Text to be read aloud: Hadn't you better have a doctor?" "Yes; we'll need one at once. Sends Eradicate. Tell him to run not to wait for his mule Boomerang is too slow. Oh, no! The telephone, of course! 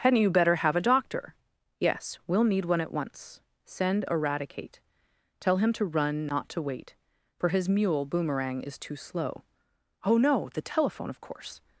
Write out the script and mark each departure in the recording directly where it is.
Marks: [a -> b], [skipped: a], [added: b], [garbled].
Hadn't you better have a doctor?" "Yes; we'll need one at once. [Sends -> Send] Eradicate. Tell him to run not to wait for his mule Boomerang is too slow. Oh, no! The telephone, of course!